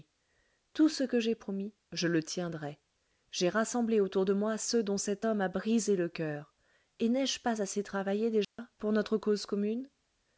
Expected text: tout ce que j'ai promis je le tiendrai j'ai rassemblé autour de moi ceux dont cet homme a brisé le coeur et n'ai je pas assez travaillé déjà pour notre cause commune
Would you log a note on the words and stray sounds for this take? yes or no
yes